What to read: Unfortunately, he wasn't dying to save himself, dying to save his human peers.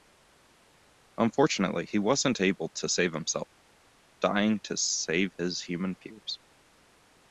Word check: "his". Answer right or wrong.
right